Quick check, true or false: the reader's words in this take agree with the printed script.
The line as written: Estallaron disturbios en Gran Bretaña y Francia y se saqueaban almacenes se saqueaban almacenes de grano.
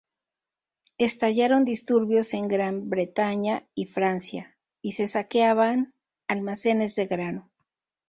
false